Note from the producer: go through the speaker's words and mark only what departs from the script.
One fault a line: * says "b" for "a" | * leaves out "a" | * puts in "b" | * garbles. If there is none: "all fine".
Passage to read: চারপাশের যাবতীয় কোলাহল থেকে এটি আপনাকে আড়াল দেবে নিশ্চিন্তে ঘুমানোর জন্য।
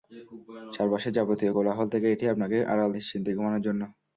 * leaves out "দেবে"